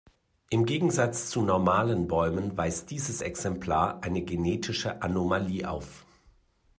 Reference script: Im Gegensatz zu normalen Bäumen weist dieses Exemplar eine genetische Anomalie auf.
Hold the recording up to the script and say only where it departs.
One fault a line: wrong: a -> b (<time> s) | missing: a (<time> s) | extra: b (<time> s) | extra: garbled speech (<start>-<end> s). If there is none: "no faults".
no faults